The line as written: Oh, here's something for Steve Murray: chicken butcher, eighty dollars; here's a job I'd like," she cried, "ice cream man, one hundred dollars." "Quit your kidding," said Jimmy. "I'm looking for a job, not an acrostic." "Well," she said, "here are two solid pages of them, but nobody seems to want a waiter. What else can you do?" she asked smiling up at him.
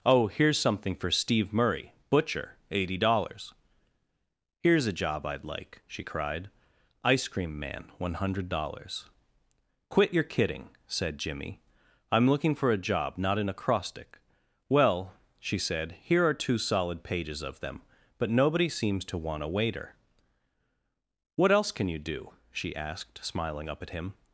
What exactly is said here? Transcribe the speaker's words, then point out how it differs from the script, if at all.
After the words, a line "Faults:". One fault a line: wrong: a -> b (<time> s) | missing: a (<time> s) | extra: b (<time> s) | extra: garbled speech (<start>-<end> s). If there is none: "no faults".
Oh, here's something for Steve Murray: butcher, eighty dollars; here's a job I'd like," she cried, "ice cream man, one hundred dollars." "Quit your kidding," said Jimmy. "I'm looking for a job, not an acrostic." "Well," she said, "here are two solid pages of them, but nobody seems to want a waiter. What else can you do?" she asked smiling up at him.
Faults:
missing: chicken (1.9 s)